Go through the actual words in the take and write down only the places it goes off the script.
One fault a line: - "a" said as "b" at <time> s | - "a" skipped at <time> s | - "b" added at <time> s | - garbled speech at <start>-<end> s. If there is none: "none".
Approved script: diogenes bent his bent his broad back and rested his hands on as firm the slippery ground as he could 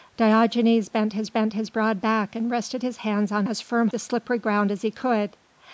none